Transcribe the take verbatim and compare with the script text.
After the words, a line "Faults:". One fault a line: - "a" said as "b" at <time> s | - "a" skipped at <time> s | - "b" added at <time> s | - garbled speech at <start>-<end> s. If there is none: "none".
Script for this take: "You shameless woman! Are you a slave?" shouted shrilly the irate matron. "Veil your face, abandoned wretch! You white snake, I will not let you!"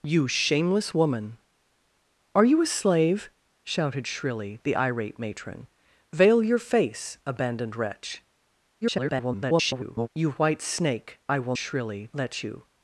"You shameless woman! Are you a slave?" shouted shrilly the irate matron. "Veil your face, abandoned wretch! [garbled] You white snake, I will shrilly let you!"
Faults:
- garbled speech at 8.8-10.1 s
- "not" said as "shrilly" at 11.6 s